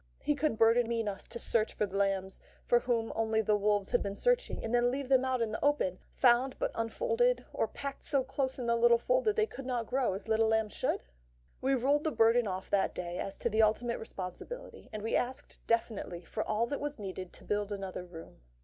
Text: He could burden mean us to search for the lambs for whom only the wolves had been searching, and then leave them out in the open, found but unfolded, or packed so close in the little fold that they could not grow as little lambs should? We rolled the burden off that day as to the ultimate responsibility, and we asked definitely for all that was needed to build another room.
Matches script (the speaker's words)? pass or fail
pass